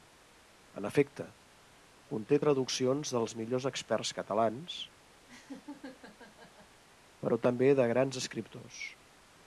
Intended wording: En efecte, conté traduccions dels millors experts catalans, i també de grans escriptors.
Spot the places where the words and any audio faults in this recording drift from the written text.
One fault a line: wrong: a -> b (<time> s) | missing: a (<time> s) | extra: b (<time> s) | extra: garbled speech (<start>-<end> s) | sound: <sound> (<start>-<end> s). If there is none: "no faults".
sound: laugh (5.3-6.8 s)
wrong: i -> però (7.3 s)